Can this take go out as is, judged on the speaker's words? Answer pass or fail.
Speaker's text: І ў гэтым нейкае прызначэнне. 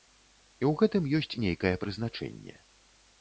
fail